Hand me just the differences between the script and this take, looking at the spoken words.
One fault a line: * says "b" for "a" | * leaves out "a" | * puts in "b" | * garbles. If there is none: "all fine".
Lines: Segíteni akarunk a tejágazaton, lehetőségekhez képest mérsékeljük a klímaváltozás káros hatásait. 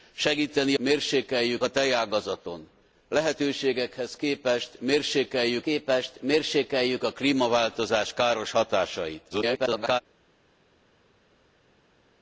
* says "mérsékeljük" for "akarunk"
* puts in "képest mérsékeljük"
* garbles